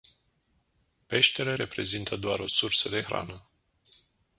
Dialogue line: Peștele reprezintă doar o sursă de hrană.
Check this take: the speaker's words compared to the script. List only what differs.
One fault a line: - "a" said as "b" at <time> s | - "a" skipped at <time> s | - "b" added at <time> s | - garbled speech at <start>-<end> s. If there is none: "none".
none